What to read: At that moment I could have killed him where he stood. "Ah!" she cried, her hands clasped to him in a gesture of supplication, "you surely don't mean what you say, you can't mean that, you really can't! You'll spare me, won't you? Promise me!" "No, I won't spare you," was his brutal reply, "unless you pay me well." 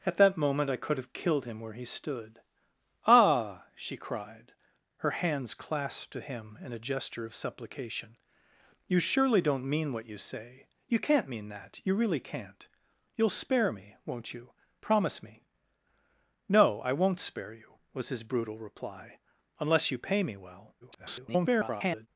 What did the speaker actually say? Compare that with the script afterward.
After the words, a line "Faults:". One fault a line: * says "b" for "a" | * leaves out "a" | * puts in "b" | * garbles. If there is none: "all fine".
At that moment I could have killed him where he stood. "Ah!" she cried, her hands clasped to him in a gesture of supplication, "you surely don't mean what you say, you can't mean that, you really can't! You'll spare me, won't you? Promise me!" "No, I won't spare you," was his brutal reply, "unless you pay me well." [garbled]
Faults:
* garbles